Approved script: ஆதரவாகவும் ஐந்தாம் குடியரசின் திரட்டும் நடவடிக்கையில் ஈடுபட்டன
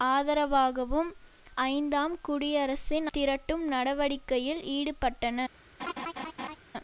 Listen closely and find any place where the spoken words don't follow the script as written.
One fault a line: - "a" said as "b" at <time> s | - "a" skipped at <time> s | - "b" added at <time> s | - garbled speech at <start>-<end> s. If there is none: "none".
none